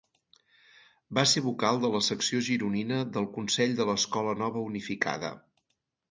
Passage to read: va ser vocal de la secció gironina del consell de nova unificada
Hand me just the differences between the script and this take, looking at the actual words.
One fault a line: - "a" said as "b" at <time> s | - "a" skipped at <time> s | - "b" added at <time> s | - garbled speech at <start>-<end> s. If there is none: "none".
- "l'escola" added at 3.9 s